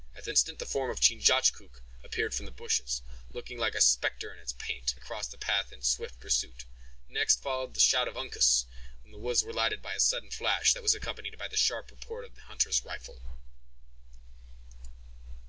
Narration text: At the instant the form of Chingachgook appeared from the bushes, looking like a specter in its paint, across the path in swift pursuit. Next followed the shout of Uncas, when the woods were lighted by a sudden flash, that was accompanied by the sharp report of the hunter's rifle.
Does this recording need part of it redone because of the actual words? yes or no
no